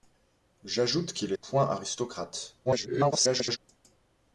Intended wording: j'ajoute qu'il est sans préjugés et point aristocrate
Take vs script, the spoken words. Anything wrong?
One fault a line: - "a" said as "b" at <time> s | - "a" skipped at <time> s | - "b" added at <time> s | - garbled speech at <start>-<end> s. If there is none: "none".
- "sans préjugés et" skipped at 1.4 s
- garbled speech at 2.6-3.6 s